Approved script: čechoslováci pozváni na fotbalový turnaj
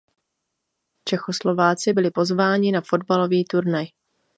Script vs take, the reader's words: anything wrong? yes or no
yes